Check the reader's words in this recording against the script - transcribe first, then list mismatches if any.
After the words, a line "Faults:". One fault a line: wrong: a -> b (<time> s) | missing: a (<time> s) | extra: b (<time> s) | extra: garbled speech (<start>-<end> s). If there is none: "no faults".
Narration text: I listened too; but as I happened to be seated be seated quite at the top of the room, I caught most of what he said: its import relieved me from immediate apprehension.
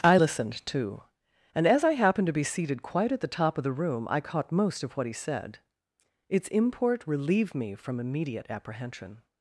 I listened too; and as I happened to be seated quite at the top of the room, I caught most of what he said: its import relieved me from immediate apprehension.
Faults:
wrong: but -> and (1.5 s)
missing: be seated (2.8 s)